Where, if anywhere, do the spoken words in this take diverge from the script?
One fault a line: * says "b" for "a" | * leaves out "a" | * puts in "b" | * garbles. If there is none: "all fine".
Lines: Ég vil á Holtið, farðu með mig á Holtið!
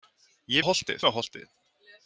* leaves out "vil"
* leaves out "farðu með"